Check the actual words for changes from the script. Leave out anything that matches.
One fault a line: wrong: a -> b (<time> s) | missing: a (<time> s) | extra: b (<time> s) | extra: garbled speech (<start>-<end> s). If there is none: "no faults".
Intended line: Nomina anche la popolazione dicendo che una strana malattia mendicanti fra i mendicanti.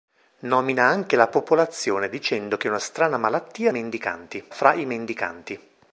no faults